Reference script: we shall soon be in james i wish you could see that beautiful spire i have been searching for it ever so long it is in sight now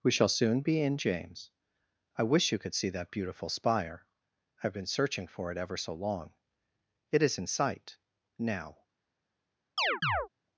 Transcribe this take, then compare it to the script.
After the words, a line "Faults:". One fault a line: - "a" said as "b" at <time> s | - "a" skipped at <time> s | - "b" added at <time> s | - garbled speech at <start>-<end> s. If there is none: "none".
we shall soon be in james i wish you could see that beautiful spire i have been searching for it ever so long it is in sight now
Faults:
none